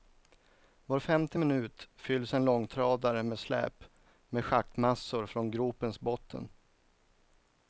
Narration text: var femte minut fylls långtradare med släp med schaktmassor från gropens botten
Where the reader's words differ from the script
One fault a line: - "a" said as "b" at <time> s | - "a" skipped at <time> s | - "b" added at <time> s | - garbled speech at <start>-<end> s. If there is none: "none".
- "en" added at 2.3 s